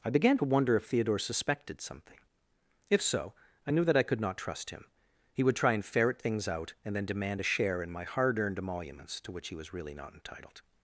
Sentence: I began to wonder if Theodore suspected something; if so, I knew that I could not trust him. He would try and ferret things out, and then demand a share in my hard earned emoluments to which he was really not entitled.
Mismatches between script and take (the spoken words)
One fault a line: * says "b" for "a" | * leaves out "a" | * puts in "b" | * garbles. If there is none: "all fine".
all fine